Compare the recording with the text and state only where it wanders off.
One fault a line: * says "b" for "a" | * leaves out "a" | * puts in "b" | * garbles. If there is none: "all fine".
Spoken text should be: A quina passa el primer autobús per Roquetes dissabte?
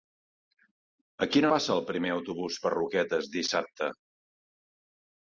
all fine